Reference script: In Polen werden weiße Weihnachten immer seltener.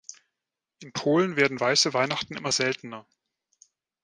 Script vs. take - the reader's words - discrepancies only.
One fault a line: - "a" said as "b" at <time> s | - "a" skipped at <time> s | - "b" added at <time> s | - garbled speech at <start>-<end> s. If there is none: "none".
none